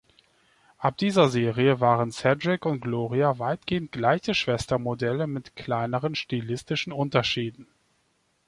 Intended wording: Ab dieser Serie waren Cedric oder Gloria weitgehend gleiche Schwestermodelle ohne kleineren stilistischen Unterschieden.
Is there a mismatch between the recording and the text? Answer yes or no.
yes